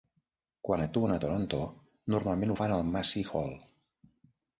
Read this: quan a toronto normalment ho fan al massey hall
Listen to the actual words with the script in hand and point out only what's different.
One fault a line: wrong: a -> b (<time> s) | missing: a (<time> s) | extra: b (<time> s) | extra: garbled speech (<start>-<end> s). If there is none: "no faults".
extra: actuen (0.8 s)